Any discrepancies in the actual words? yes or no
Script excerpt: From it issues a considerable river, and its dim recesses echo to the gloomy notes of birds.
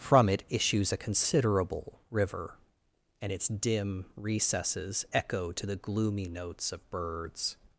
no